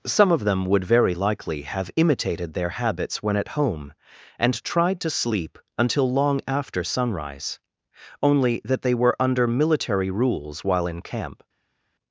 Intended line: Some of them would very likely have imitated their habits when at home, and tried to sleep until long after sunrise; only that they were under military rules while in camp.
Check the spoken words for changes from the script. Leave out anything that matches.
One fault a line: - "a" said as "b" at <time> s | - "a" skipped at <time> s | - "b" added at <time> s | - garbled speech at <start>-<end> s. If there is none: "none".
none